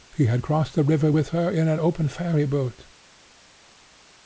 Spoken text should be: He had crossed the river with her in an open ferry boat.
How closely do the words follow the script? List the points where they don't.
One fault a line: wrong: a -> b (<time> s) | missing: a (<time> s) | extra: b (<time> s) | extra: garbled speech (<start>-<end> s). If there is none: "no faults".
no faults